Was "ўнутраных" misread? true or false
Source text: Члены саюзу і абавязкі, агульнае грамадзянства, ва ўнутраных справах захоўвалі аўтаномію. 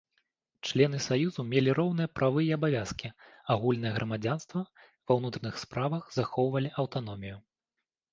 false